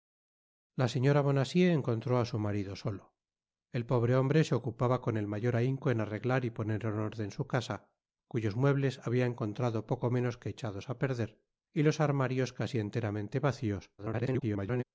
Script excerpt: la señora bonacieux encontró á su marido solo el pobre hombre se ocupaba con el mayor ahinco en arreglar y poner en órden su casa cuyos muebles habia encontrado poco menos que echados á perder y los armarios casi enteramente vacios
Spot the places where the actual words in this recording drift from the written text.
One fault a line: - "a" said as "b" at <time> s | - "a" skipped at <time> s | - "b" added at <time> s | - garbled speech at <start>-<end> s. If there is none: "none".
- garbled speech at 14.0-14.8 s